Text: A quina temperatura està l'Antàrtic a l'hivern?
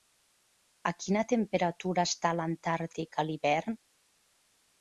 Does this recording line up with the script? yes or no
yes